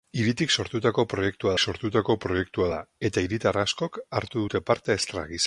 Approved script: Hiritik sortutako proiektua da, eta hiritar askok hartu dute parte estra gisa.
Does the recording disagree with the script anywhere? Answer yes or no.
yes